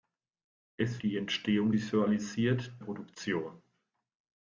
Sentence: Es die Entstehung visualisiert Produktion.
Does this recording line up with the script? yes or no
yes